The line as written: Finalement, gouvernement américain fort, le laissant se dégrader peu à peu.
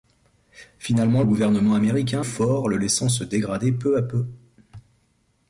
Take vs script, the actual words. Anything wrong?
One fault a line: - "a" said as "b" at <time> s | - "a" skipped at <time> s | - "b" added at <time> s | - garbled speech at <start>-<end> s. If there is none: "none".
none